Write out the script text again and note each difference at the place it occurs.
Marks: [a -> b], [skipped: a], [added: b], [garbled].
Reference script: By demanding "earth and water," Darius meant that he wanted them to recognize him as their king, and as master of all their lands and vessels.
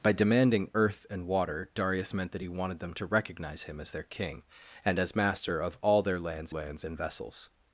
By demanding "earth and water," Darius meant that he wanted them to recognize him as their king, and as master of all their lands [added: lands] and vessels.